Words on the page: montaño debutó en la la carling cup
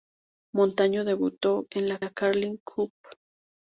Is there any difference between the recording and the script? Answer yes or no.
no